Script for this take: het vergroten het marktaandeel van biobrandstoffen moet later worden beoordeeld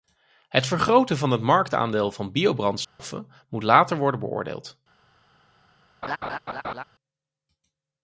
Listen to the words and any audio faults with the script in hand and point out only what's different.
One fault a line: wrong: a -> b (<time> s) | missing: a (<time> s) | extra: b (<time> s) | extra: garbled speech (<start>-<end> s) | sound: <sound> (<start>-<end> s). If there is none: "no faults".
extra: van (1.2 s)
sound: dropout (2.8-3.0 s)
sound: laugh (6.0-6.8 s)